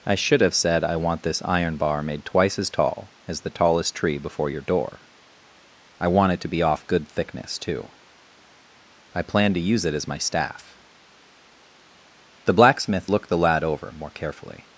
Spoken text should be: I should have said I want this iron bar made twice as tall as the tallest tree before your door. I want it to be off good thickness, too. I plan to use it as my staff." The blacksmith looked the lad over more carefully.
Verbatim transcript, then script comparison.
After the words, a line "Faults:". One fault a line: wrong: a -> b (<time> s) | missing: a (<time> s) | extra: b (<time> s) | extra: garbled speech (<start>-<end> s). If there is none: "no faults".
I should have said I want this iron bar made twice as tall as the tallest tree before your door. I want it to be off good thickness, too. I plan to use it as my staff." The blacksmith looked the lad over more carefully.
Faults:
no faults